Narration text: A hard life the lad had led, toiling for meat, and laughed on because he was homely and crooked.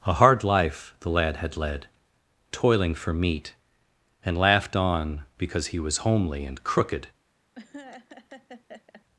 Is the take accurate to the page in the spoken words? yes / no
yes